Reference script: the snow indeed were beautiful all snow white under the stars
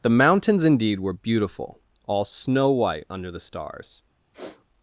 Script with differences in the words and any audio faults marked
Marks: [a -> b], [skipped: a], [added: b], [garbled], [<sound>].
the [snow -> mountains] indeed were beautiful all snow white under the stars [sniff]